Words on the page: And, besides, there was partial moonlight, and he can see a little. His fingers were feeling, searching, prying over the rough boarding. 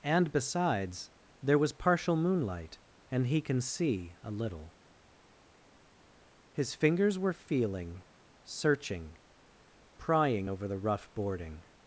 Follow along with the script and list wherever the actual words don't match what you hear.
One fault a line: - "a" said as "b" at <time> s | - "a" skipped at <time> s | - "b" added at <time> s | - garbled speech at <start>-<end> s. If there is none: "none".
none